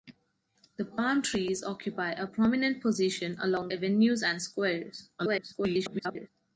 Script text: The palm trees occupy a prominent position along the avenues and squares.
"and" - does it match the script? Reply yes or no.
yes